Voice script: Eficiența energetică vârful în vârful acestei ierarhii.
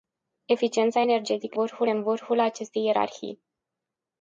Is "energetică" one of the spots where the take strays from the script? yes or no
no